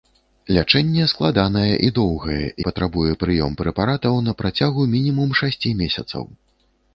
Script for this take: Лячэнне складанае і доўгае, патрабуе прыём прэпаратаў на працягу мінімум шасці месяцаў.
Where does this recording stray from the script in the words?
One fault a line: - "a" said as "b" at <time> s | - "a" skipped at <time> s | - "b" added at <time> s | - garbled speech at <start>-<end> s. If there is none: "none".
none